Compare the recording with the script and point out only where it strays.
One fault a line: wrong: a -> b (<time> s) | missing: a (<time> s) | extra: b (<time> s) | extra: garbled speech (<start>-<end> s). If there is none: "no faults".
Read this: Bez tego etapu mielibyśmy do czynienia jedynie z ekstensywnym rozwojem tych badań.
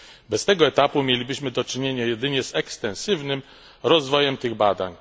no faults